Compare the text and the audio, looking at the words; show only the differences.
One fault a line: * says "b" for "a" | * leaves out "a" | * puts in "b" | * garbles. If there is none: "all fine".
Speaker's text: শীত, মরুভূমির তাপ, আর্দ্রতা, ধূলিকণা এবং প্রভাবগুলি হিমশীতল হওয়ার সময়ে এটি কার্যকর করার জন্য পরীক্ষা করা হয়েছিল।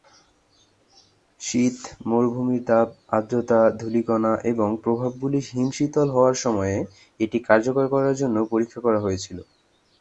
all fine